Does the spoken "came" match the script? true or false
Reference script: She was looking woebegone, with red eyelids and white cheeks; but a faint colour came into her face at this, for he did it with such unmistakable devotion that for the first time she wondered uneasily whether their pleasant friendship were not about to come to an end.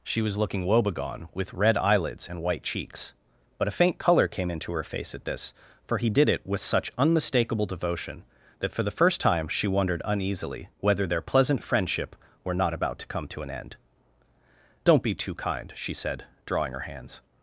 true